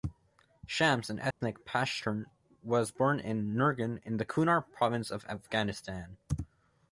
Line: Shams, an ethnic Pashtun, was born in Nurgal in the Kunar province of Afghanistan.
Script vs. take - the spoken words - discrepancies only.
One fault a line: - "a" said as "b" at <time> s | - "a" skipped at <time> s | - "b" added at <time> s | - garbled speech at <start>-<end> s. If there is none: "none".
none